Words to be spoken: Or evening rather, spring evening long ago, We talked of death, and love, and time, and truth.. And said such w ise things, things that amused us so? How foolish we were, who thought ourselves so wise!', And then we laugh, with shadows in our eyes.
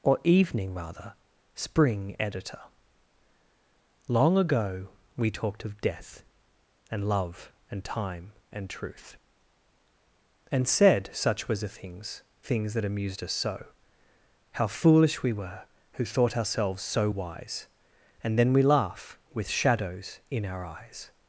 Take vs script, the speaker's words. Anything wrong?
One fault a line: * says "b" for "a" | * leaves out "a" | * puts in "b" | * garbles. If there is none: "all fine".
* says "editor" for "evening"
* says "was the" for "w ise"